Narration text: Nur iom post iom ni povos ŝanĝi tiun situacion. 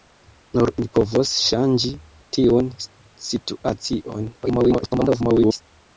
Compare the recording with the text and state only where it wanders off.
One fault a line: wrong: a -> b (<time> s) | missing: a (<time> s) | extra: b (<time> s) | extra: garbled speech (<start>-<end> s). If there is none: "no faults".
missing: iom post iom (0.7 s)
extra: garbled speech (4.4-5.6 s)